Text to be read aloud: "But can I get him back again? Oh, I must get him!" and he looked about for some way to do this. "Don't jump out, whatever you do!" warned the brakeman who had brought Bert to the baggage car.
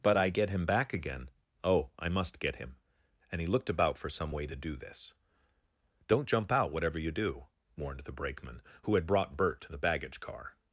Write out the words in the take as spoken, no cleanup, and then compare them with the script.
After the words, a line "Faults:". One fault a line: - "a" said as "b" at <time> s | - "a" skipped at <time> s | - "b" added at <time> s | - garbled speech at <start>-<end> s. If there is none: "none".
"But I get him back again? Oh, I must get him!" and he looked about for some way to do this. "Don't jump out, whatever you do!" warned the brakeman who had brought Bert to the baggage car.
Faults:
- "can" skipped at 0.2 s